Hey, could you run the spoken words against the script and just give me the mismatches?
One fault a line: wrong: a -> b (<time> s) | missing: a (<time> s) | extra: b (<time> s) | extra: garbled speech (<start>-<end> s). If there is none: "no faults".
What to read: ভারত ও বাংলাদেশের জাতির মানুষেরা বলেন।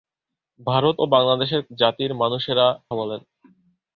no faults